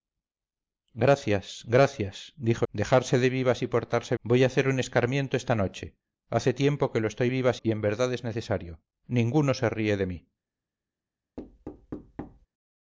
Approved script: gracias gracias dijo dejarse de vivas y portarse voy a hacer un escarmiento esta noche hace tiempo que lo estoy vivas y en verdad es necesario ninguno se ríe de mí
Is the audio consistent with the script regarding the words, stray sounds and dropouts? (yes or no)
no